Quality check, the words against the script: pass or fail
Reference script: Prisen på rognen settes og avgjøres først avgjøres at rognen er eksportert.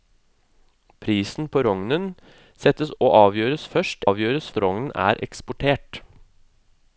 pass